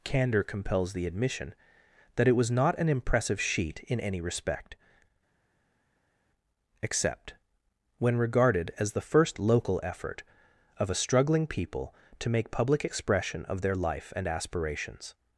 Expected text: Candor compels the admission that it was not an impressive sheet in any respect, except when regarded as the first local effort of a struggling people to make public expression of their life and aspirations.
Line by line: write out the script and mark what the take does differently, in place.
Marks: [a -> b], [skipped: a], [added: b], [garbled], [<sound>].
Candor compels the admission that it was not an impressive sheet in any respect, except when regarded as the first local effort of a struggling people to make public expression of their life and aspirations.